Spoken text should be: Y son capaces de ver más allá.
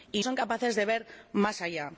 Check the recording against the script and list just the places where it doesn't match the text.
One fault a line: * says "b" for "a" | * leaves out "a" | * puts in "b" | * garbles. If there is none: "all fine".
all fine